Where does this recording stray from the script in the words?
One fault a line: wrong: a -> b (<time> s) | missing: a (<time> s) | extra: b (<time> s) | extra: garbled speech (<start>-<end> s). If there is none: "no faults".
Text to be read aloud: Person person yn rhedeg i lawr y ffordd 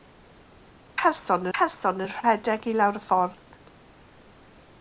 no faults